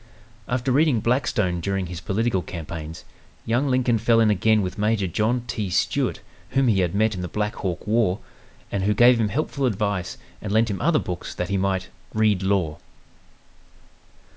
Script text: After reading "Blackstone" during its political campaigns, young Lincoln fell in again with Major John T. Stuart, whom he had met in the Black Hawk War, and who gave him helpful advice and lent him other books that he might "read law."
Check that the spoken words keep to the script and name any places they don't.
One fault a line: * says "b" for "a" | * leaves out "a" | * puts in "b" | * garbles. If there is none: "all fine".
* says "his" for "its"